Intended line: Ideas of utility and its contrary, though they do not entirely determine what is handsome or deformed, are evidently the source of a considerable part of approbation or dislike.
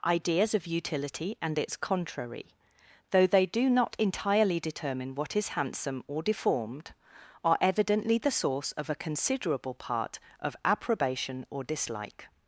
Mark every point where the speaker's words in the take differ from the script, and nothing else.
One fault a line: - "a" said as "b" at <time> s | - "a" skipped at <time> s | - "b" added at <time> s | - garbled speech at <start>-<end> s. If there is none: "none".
none